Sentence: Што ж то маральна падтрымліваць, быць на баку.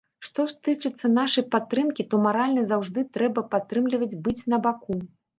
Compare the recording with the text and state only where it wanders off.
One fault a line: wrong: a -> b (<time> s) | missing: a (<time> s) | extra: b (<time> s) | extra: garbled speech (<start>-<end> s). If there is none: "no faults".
extra: тычыцца нашай падтрымкі (0.7 s)
extra: заўжды трэба (2.7 s)